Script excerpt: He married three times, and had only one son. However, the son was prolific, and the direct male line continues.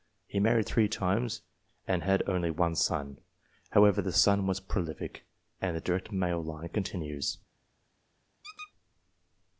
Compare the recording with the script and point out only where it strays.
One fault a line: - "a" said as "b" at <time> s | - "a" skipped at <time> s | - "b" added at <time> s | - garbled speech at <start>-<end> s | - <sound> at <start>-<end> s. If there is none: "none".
- squeak at 8.4-8.7 s